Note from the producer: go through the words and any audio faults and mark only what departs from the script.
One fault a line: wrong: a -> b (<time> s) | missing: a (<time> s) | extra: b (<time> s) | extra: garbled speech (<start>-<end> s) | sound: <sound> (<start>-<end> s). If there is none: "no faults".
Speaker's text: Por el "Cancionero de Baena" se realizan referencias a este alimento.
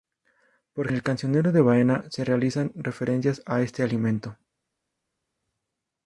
no faults